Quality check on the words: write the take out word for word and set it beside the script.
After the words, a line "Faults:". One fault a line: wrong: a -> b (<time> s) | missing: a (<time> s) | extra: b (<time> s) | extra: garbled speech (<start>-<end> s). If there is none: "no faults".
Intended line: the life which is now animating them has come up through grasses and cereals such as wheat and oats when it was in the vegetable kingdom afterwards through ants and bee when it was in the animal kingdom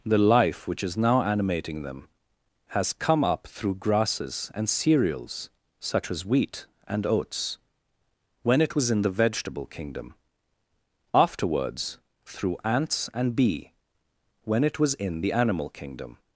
the life which is now animating them has come up through grasses and cereals such as wheat and oats when it was in the vegetable kingdom afterwards through ants and bee when it was in the animal kingdom
Faults:
no faults